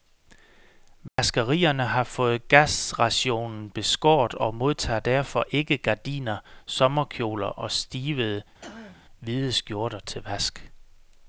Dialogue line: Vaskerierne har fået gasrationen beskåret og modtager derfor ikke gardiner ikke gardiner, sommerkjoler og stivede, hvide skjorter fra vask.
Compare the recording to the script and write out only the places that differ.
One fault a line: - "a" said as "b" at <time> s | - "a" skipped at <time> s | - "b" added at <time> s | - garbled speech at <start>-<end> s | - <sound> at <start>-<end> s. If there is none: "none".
- dropout at 1.1-1.2 s
- "ikke gardiner" skipped at 6.4 s
- throat clearing at 8.6-9.0 s
- "fra" said as "til" at 10.0 s